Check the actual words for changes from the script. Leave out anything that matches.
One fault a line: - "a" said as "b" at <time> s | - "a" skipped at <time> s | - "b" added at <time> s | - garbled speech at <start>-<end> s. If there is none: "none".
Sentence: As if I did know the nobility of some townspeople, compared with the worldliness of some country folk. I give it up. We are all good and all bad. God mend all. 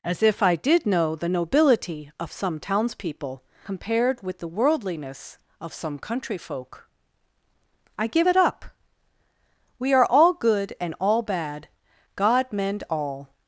none